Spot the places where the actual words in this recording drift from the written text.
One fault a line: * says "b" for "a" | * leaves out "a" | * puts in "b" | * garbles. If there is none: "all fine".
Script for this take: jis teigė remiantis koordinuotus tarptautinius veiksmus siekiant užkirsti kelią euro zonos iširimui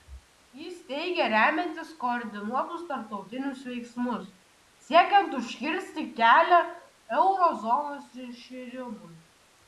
all fine